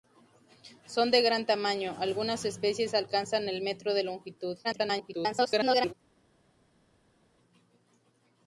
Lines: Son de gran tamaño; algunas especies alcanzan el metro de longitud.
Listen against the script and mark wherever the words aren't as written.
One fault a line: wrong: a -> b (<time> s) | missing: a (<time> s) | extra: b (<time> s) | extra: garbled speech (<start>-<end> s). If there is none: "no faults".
extra: garbled speech (4.6-5.9 s)